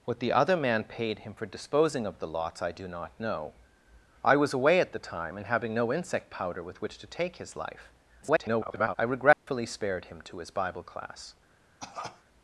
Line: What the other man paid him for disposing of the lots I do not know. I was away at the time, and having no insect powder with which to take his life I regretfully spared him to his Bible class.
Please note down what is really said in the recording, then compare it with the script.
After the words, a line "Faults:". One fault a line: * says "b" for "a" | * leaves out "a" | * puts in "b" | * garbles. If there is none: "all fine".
What the other man paid him for disposing of the lots I do not know. I was away at the time, and having no insect powder with which to take his life [garbled] I regretfully spared him to his Bible class.
Faults:
* garbles